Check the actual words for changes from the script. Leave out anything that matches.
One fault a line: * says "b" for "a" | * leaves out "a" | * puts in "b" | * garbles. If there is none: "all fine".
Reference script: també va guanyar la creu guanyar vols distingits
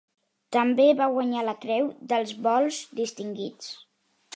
* says "dels" for "guanyar"